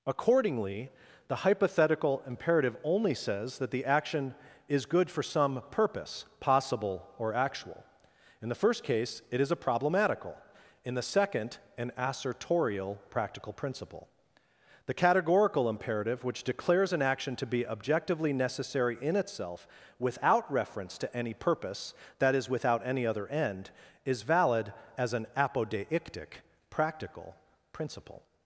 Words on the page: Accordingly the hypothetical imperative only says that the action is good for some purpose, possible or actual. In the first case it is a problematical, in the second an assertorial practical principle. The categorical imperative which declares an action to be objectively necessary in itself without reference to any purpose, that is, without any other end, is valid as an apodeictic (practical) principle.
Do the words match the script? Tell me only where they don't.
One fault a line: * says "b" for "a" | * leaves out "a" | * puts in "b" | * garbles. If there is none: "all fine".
all fine